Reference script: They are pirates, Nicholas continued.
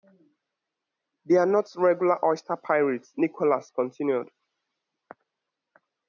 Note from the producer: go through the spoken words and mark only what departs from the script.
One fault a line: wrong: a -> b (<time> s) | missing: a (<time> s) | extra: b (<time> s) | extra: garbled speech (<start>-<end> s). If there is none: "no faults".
extra: not regular oyster (1.4 s)